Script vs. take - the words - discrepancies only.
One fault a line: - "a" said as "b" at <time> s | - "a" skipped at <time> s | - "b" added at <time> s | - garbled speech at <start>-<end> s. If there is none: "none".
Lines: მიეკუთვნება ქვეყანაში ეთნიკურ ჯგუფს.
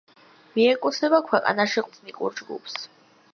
none